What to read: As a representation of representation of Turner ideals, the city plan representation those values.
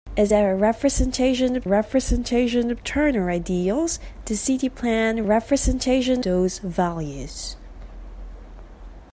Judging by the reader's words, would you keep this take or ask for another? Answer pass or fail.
pass